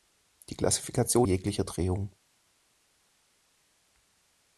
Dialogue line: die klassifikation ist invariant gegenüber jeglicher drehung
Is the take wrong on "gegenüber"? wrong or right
wrong